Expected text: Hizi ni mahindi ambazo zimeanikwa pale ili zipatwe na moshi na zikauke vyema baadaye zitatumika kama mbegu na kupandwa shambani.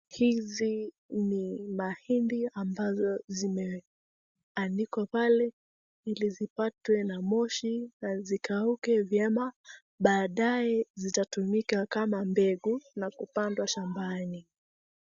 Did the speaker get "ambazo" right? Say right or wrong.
right